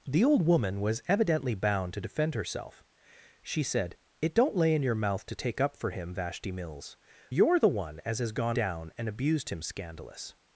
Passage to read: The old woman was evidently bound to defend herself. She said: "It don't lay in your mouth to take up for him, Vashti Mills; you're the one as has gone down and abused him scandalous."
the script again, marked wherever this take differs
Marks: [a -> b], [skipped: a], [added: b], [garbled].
The old woman was evidently bound to defend herself. She said: "It don't lay in your mouth to take up for him, Vashti Mills; you're the one as has gone down and abused him scandalous."